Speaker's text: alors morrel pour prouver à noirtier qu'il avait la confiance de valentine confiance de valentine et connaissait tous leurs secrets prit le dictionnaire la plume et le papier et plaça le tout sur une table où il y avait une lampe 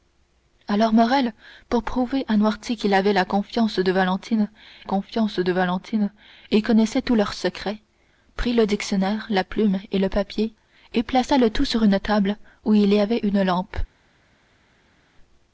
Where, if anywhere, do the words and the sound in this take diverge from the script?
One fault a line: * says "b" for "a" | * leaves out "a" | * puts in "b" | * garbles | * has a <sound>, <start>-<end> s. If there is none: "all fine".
all fine